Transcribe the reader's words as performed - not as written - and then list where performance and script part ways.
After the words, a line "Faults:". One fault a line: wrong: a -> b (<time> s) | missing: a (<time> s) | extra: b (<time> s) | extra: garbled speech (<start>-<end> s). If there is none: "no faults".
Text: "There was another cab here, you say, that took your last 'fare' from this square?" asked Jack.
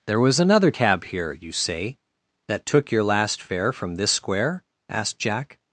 "There was another cab here, you say, that took your last 'fare' from this square?" asked Jack.
Faults:
no faults